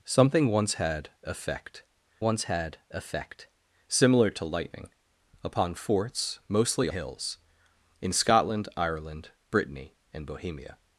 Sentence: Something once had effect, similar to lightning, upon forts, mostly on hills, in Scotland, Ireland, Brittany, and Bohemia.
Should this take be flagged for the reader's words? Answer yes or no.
yes